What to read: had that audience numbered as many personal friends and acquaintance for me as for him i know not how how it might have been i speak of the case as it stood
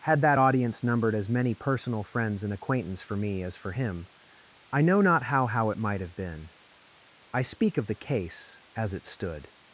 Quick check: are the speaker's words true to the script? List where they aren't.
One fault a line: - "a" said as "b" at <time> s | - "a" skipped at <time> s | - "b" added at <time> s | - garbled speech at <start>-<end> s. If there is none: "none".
none